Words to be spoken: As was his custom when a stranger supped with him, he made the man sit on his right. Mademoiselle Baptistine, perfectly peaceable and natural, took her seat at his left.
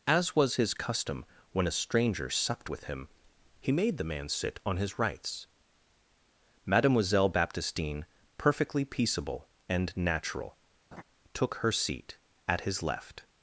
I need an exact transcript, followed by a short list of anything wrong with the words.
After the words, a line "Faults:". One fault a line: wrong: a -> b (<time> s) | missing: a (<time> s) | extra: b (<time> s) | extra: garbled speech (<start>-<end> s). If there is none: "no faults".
As was his custom when a stranger supped with him, he made the man sit on his rights. Mademoiselle Baptistine, perfectly peaceable and natural, took her seat at his left.
Faults:
wrong: right -> rights (5.0 s)